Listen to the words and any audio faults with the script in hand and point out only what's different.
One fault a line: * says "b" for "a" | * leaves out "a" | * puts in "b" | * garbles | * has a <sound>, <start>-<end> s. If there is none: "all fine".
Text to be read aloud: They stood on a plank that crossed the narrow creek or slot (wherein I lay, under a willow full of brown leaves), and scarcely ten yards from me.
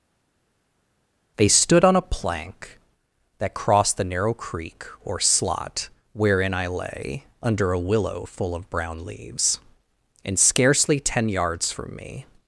all fine